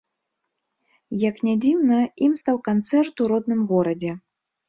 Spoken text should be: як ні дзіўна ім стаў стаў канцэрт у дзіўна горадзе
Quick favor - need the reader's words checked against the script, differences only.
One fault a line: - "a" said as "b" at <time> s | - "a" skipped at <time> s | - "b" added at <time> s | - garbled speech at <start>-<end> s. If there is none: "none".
- "стаў" skipped at 2.6 s
- "дзіўна" said as "родным" at 3.3 s